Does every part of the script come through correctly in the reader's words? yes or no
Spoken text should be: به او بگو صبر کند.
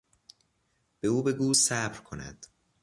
yes